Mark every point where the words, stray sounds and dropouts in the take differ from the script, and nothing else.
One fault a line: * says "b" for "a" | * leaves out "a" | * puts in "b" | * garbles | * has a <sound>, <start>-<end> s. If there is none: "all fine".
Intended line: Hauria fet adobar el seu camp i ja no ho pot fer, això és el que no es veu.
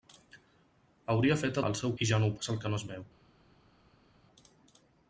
* leaves out "adobar"
* leaves out "camp"
* leaves out "pot fer això"